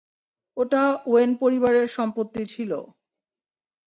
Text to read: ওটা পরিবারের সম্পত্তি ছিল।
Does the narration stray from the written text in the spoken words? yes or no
yes